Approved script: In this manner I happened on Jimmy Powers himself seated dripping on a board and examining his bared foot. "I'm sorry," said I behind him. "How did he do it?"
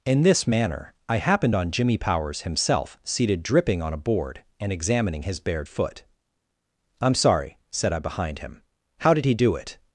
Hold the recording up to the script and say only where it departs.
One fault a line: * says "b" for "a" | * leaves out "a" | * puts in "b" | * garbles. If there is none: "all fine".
all fine